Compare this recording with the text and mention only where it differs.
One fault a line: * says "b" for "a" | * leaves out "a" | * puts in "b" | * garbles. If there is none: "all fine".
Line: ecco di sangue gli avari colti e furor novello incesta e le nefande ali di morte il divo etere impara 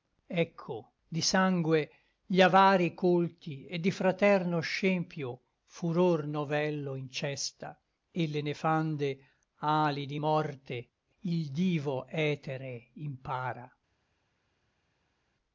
* puts in "di fraterno scempio"